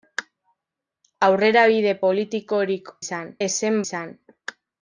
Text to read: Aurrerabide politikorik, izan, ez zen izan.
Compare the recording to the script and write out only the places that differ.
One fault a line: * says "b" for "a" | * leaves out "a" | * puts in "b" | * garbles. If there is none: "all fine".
all fine